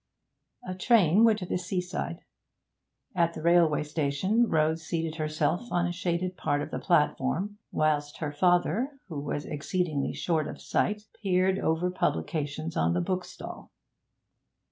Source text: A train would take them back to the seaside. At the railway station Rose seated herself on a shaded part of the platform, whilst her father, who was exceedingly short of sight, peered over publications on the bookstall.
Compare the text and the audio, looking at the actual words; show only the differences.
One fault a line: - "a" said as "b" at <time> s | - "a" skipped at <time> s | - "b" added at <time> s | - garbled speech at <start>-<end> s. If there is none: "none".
- "take them back" skipped at 1.4 s